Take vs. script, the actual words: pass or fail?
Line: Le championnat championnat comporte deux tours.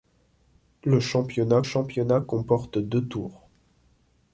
pass